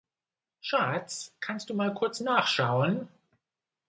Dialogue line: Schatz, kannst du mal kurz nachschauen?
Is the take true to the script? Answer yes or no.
yes